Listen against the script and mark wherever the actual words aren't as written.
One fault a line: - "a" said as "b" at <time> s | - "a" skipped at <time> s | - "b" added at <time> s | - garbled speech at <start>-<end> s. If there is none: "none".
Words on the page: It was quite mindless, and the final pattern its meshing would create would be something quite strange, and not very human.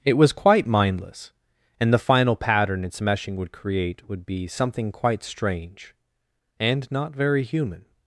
none